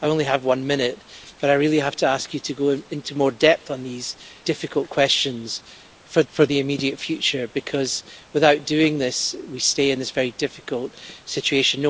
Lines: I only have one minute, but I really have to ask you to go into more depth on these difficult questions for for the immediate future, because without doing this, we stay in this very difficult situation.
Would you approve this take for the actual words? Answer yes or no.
yes